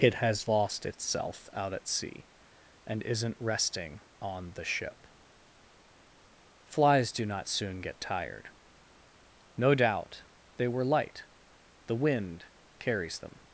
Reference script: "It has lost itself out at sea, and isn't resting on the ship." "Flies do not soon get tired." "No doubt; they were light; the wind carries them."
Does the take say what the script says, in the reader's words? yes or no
yes